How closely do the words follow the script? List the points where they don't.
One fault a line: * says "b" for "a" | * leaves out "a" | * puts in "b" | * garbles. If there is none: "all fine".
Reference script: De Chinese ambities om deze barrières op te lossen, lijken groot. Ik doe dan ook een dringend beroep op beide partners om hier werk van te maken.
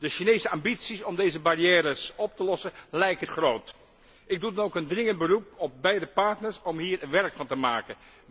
all fine